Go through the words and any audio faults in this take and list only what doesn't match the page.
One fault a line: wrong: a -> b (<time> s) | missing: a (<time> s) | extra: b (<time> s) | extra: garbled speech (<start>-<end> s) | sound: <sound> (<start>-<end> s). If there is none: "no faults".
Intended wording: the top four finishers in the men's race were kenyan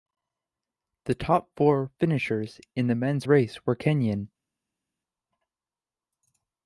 no faults